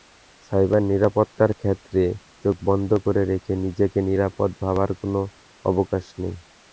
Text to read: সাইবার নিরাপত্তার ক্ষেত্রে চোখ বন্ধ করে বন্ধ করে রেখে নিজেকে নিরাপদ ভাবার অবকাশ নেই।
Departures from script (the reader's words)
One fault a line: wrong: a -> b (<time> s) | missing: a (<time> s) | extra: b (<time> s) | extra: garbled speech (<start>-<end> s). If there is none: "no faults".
missing: বন্ধ করে (3.2 s)
extra: কোনো (5.0 s)